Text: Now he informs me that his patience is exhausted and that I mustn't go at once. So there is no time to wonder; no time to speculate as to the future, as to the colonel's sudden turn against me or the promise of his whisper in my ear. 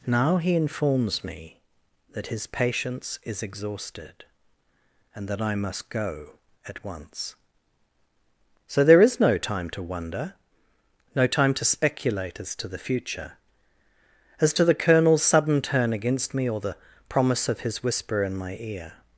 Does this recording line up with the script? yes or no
no